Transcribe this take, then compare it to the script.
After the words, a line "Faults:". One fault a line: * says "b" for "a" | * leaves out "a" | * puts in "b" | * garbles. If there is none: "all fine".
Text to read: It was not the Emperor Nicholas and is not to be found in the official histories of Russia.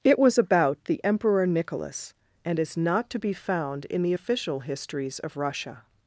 It was about the Emperor Nicholas and is not to be found in the official histories of Russia.
Faults:
* says "about" for "not"